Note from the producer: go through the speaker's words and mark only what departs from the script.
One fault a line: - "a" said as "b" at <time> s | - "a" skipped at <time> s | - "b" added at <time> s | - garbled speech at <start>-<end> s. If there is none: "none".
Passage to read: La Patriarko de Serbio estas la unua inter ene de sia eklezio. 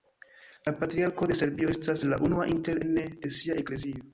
none